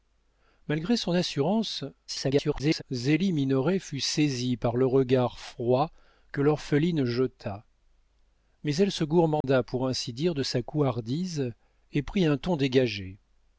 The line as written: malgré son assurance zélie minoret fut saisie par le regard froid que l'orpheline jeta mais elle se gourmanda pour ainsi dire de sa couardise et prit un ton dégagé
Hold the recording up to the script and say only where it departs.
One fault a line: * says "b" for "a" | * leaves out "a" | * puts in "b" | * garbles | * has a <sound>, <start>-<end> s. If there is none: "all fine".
* garbles
* has a dropout, 9.4-9.4 s